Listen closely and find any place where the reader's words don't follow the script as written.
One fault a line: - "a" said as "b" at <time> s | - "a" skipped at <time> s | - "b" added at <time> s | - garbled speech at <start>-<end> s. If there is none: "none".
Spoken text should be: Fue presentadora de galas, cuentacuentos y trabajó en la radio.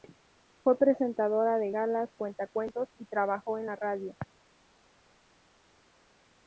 none